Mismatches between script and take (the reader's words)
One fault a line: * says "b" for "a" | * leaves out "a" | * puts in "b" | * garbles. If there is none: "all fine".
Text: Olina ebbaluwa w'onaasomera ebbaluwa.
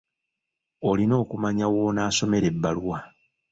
* says "okumanya" for "ebbaluwa"